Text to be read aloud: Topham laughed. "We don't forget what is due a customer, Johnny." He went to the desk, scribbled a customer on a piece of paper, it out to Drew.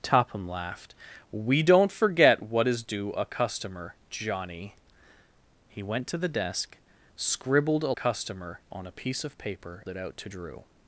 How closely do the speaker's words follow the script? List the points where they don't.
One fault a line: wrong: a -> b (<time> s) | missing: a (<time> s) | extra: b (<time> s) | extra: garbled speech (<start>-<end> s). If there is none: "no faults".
no faults